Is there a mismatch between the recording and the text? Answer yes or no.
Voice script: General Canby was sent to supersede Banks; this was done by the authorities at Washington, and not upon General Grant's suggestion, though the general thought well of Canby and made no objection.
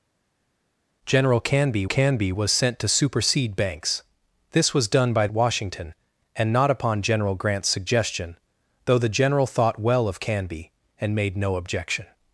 yes